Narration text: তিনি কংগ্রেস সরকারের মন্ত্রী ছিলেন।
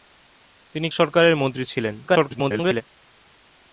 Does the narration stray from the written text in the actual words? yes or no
yes